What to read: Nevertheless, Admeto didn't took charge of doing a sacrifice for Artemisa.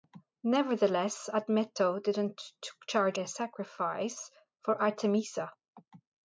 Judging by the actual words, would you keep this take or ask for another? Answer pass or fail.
fail